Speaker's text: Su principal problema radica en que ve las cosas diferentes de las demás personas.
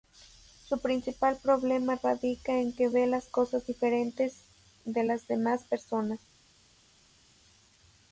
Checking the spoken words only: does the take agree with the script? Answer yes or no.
yes